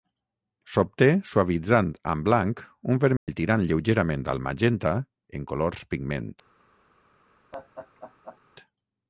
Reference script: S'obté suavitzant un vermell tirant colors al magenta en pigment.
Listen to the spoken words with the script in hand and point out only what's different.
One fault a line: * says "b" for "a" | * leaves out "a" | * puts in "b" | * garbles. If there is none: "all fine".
* puts in "amb blanc"
* says "lleugerament" for "colors"
* puts in "colors"